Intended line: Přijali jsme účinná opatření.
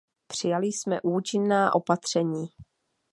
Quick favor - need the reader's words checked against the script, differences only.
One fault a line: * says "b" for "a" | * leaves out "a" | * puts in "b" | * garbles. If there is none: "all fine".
all fine